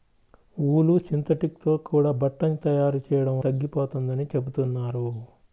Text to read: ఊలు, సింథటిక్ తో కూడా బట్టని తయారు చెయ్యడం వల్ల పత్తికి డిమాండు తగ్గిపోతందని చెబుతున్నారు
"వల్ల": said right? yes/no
no